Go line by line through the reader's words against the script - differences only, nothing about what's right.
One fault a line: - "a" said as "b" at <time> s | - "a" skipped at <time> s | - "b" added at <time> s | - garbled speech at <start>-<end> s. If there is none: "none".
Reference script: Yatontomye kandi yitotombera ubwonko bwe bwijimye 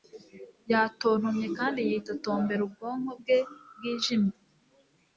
none